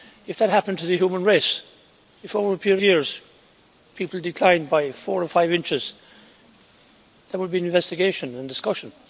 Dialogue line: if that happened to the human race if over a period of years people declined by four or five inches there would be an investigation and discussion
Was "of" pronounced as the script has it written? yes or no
no